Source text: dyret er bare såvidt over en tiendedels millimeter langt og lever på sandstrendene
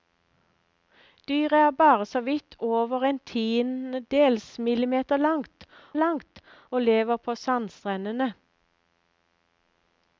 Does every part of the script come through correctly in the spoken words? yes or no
no